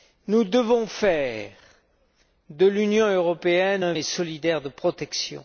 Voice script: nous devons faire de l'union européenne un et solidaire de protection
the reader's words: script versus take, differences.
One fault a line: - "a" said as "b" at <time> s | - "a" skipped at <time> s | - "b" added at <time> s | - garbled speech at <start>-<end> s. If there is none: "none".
none